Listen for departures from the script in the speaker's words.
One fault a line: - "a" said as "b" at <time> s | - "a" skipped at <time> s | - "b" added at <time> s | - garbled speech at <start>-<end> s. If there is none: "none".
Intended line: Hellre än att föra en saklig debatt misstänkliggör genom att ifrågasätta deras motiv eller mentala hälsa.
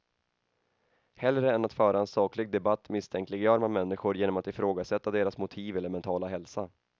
- "man människor" added at 3.6 s